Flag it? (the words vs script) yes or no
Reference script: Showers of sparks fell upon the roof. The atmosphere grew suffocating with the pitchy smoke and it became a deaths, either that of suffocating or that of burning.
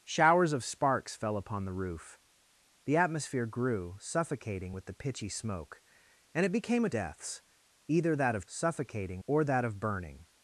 no